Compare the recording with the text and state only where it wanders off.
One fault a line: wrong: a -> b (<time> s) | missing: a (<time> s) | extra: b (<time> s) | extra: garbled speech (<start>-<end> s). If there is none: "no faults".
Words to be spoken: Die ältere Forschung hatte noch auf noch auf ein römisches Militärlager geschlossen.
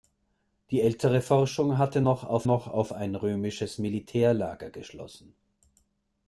no faults